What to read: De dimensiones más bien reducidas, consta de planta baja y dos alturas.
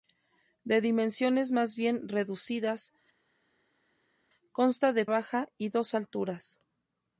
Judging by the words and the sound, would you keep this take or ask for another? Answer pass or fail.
fail